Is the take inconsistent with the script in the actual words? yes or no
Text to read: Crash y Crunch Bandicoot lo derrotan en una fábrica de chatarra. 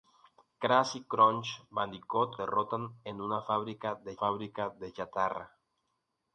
yes